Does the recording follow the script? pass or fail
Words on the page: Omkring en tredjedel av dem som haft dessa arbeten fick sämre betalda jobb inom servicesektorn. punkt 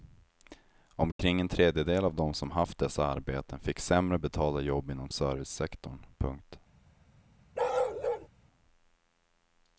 pass